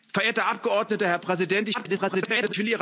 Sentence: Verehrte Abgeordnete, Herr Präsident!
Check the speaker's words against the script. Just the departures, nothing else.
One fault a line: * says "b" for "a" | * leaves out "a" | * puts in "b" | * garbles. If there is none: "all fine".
* garbles